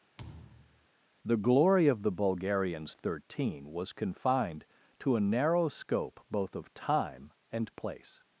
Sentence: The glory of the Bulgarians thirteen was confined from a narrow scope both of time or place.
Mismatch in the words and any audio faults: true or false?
true